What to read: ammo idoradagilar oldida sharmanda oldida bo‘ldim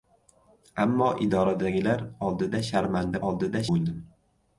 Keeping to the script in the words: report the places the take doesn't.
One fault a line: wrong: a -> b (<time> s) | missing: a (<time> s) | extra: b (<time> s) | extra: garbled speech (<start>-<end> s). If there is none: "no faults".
no faults